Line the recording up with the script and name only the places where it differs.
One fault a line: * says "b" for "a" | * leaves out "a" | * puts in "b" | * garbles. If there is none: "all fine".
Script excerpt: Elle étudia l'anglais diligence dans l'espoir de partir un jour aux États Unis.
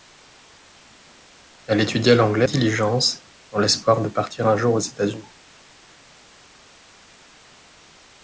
all fine